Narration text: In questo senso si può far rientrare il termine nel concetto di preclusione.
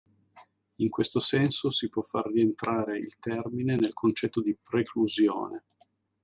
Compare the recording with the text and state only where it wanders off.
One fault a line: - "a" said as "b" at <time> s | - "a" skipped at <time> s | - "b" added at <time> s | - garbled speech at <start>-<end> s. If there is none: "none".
none